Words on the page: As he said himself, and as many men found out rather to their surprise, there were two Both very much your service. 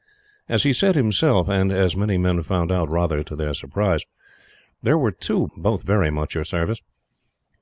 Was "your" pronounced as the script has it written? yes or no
yes